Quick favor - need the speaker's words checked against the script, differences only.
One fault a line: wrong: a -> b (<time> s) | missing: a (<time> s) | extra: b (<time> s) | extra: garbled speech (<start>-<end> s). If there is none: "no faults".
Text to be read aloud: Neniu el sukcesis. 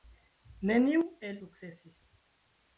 no faults